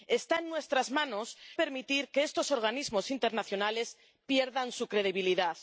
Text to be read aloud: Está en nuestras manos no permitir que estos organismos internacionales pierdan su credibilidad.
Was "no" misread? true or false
true